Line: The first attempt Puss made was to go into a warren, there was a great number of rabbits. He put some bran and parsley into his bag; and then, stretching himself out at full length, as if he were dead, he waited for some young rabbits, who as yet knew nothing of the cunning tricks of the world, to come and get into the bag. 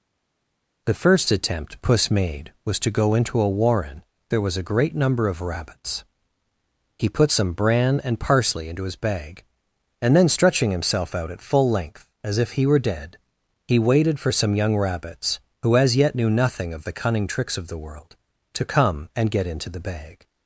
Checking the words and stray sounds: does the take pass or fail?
pass